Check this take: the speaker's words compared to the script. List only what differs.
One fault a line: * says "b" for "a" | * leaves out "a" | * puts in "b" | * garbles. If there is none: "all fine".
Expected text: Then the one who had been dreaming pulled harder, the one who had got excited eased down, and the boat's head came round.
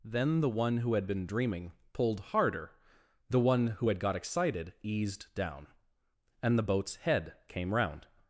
all fine